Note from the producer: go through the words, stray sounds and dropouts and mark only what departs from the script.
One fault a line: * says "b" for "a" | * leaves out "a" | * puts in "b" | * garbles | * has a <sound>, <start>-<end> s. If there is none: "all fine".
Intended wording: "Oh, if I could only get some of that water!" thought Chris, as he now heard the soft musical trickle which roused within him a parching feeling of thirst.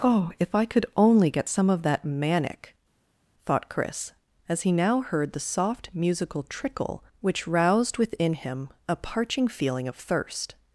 * says "manic" for "water"